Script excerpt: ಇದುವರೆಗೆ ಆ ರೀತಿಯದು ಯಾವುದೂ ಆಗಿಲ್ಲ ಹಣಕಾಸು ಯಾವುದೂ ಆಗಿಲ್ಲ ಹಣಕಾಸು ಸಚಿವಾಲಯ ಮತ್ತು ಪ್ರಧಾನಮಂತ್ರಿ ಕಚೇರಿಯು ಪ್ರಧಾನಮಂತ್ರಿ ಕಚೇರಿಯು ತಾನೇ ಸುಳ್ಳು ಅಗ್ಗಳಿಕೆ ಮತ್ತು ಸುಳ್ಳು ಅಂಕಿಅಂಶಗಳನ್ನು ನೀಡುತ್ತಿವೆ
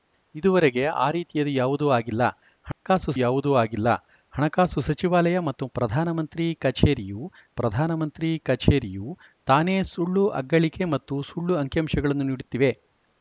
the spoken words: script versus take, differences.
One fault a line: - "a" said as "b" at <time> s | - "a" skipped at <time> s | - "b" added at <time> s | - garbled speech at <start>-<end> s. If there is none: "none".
none